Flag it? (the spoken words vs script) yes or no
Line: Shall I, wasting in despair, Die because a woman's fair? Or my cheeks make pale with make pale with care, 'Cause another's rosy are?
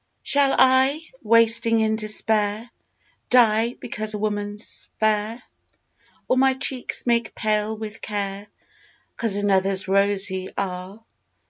yes